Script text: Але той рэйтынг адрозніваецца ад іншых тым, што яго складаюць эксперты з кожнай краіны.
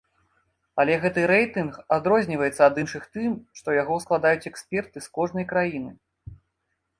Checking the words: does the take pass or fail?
fail